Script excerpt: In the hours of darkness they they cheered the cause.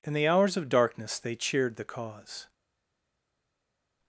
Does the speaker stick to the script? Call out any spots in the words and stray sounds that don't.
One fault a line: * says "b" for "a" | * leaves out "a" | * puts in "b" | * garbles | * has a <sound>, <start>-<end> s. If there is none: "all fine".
* leaves out "they"